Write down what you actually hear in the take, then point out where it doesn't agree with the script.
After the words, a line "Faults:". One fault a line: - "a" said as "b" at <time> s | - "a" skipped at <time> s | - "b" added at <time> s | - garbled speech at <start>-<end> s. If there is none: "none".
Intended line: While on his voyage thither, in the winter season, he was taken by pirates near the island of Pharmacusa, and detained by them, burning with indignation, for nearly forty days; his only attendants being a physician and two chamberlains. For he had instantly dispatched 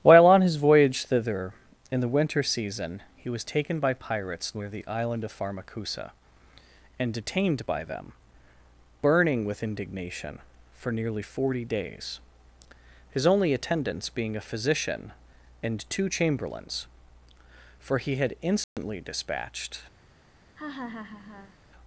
While on his voyage thither, in the winter season, he was taken by pirates near the island of Pharmacusa, and detained by them, burning with indignation, for nearly forty days; his only attendants being a physician and two chamberlains. For he had instantly dispatched
Faults:
none